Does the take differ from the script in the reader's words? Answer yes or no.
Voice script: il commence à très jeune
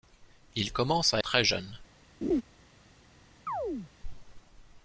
no